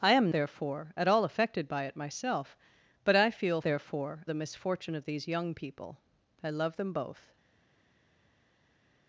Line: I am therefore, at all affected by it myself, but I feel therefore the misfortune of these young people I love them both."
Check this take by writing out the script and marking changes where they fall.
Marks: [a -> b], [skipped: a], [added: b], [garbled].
I am therefore, at all affected by it myself, but I feel therefore the misfortune of these young people I love them both."